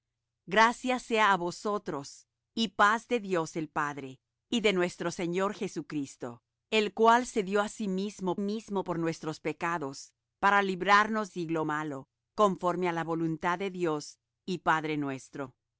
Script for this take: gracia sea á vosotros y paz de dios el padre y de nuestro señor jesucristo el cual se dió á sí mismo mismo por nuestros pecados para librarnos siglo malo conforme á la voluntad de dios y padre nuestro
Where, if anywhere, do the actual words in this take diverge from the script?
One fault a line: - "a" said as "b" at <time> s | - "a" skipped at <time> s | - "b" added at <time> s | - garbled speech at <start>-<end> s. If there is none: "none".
none